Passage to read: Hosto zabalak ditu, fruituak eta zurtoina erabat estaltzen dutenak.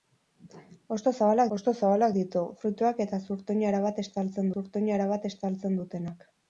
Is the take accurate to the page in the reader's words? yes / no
no